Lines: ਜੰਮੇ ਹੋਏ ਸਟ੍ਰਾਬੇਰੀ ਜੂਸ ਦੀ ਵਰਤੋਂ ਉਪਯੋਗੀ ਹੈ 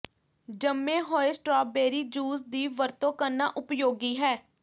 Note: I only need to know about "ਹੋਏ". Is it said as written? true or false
true